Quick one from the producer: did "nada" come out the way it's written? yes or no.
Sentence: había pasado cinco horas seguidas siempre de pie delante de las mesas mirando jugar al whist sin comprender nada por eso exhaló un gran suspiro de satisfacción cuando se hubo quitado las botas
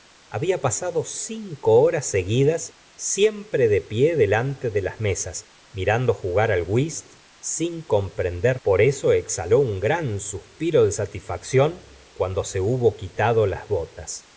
no